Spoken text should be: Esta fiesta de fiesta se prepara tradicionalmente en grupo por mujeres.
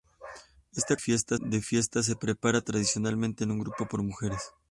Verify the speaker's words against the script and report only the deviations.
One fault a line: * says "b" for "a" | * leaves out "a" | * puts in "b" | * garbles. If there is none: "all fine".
all fine